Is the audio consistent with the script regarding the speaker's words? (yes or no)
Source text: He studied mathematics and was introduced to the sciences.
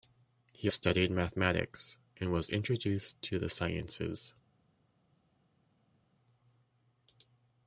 yes